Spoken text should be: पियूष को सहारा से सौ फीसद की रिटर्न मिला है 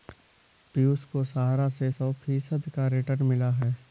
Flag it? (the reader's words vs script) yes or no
yes